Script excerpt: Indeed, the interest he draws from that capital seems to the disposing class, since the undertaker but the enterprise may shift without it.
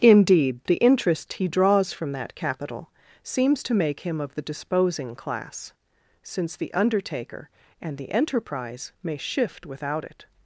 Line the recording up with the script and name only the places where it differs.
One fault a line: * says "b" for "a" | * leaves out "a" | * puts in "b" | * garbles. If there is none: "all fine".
* puts in "make him of"
* says "and" for "but"